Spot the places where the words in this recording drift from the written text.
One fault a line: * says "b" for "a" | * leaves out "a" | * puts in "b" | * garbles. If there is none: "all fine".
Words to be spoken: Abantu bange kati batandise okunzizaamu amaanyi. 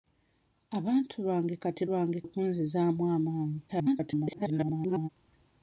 * says "bange" for "batandise"
* garbles